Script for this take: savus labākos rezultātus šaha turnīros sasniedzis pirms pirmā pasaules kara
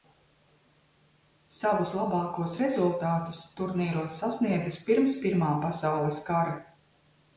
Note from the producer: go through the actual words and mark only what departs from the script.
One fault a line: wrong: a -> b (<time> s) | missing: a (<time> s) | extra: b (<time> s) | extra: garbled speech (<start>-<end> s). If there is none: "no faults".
missing: šaha (3.4 s)